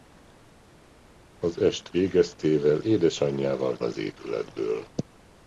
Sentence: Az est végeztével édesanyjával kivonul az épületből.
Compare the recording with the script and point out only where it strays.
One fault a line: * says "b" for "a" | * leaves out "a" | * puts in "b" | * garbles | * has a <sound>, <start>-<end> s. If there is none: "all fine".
* leaves out "kivonul"